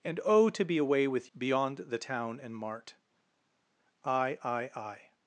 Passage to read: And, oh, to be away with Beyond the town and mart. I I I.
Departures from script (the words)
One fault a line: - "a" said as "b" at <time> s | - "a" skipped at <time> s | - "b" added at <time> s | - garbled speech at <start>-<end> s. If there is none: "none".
none